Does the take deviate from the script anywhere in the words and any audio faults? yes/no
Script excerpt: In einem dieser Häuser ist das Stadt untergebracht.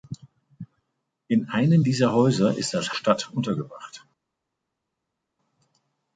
no